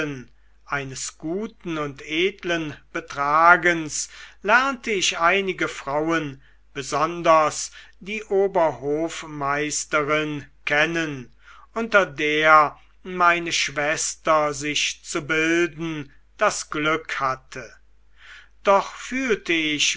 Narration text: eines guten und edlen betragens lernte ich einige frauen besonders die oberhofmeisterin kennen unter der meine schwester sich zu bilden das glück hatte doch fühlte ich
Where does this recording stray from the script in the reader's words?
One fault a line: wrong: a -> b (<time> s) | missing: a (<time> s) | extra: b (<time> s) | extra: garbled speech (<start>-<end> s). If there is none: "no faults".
no faults